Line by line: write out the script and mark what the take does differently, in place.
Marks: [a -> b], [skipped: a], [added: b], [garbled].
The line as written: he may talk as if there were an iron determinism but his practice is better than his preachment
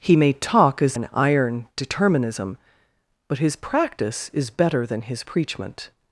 he may talk as [skipped: if there were] an iron determinism but his practice is better than his preachment